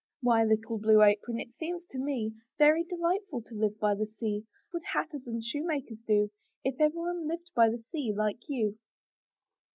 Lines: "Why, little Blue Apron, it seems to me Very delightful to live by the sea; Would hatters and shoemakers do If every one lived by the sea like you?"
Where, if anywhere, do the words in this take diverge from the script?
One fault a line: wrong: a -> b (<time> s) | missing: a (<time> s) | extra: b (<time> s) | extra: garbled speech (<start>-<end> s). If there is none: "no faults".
no faults